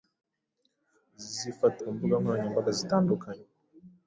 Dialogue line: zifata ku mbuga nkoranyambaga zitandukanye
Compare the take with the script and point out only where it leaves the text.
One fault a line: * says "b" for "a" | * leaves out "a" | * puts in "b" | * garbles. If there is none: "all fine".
all fine